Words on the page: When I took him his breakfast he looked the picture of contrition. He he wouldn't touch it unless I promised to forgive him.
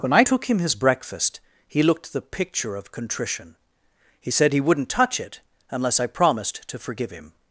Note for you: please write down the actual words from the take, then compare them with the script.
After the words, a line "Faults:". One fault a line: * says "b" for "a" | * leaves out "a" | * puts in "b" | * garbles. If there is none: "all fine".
When I took him his breakfast he looked the picture of contrition. He said he wouldn't touch it unless I promised to forgive him.
Faults:
* puts in "said"